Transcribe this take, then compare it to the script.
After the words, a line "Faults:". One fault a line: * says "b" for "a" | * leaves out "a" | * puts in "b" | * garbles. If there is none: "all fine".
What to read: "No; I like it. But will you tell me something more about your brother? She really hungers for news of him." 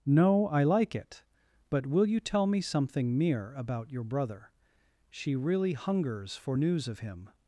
"No; I like it. But will you tell me something mere about your brother? She really hungers for news of him."
Faults:
* says "mere" for "more"